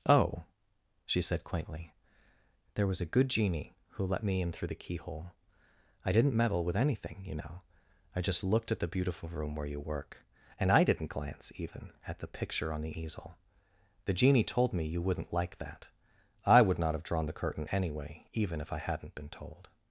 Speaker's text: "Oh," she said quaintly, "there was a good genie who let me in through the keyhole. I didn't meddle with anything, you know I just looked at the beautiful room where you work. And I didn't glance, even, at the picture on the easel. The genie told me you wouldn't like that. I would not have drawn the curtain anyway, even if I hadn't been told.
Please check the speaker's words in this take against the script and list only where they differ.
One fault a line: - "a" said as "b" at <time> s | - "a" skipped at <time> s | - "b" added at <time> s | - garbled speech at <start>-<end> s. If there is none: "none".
none